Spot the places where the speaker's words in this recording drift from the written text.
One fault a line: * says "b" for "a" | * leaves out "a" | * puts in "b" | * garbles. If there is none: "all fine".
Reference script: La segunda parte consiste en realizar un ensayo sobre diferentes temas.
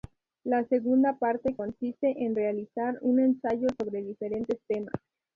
all fine